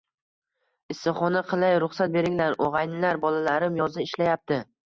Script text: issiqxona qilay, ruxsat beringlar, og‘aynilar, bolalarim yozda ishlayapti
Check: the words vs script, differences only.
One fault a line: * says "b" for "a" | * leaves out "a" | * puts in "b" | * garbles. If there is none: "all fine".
all fine